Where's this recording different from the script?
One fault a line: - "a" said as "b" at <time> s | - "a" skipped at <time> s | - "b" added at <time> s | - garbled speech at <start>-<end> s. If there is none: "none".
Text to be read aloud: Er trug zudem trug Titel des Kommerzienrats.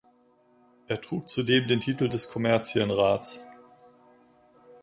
- "trug" said as "den" at 1.7 s